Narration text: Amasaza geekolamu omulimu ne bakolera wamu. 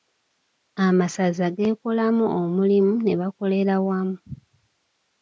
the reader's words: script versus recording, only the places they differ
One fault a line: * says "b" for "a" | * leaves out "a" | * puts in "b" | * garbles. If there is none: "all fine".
all fine